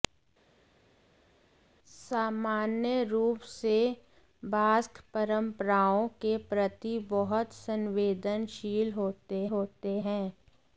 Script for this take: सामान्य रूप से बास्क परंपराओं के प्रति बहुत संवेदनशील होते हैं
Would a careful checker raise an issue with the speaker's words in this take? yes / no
yes